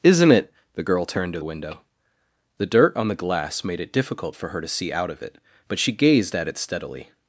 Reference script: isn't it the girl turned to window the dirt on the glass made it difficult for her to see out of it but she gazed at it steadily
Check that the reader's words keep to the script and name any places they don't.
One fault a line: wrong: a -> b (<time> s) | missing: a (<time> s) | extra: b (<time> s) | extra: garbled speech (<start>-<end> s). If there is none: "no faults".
no faults